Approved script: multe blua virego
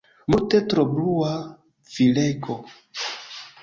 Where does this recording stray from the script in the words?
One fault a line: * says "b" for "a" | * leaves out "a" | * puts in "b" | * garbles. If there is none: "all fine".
* puts in "tro"